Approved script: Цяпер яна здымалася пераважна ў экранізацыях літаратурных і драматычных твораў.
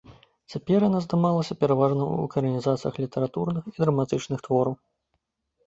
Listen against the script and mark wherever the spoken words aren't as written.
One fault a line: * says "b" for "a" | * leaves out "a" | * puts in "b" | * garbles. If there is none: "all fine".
all fine